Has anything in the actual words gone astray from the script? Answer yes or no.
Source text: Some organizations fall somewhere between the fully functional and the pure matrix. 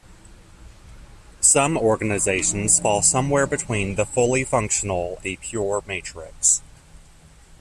yes